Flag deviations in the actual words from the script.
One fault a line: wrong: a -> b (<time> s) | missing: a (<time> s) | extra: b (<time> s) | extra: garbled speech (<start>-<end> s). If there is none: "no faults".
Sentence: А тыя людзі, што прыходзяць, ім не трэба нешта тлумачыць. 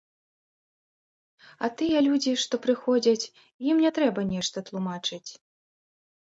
no faults